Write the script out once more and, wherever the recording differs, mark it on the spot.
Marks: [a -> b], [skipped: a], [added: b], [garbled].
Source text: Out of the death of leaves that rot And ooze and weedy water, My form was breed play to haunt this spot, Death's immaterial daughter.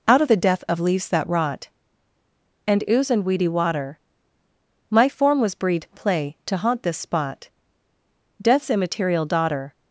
Out of the death of leaves that rot And ooze and weedy water, My form was breed play to haunt this spot, Death's immaterial daughter.